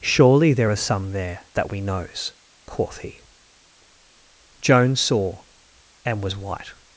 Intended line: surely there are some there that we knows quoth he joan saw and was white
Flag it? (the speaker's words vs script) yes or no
no